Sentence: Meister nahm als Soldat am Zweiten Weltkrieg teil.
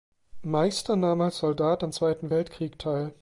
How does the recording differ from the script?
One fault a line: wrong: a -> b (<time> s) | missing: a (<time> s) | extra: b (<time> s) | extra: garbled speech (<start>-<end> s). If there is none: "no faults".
no faults